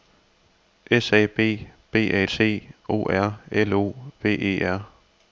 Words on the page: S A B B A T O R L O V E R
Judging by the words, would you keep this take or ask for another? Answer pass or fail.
pass